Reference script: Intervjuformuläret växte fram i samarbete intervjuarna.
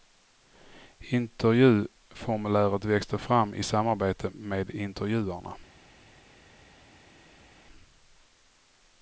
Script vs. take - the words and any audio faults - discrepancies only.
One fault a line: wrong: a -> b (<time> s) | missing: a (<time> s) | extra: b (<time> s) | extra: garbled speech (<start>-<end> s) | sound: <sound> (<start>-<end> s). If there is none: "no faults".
extra: med (4.3 s)